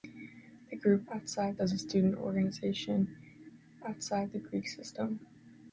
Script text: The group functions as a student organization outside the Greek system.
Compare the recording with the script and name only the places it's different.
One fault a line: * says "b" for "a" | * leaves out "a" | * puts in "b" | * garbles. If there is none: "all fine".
* says "outside" for "functions"